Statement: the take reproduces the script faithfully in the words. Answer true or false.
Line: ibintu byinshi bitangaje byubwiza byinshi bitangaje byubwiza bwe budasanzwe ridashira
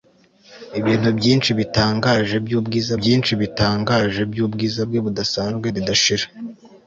true